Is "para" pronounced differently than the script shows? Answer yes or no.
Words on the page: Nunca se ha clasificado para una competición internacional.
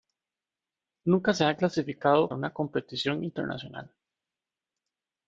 yes